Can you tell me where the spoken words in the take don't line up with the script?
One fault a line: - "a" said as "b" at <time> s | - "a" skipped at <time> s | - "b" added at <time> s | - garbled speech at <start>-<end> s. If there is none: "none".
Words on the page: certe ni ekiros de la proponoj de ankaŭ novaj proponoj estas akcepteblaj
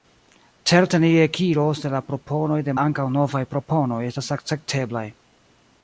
none